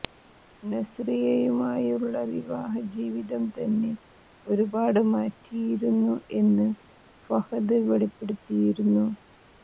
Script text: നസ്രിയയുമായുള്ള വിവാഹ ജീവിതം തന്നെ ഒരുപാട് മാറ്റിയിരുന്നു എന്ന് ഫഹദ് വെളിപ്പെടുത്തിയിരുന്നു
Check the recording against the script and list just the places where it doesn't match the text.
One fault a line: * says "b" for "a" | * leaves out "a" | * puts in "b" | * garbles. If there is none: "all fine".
all fine